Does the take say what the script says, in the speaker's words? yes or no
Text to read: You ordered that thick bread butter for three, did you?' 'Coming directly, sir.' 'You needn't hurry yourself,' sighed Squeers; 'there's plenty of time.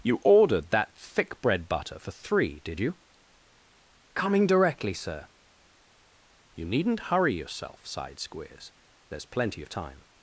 yes